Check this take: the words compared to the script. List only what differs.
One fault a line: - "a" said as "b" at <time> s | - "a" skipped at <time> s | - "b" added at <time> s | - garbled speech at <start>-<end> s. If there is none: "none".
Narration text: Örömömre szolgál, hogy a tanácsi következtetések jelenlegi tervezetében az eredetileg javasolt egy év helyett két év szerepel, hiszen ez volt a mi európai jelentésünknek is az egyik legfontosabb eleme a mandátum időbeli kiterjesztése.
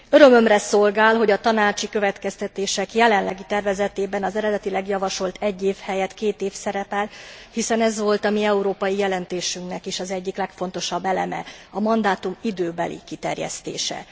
none